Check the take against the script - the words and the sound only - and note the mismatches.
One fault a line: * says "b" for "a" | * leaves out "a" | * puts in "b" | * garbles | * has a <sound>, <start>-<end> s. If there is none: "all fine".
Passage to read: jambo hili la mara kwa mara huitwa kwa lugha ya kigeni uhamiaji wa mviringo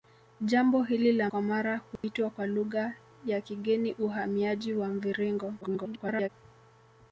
* leaves out "mara"
* has a dropout, 2.0-2.0 s
* garbles